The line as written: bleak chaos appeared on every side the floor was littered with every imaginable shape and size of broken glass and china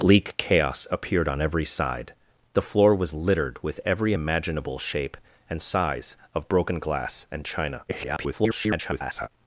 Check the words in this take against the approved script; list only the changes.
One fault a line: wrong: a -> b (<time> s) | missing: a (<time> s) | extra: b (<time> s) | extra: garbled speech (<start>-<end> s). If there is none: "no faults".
extra: garbled speech (7.9-9.3 s)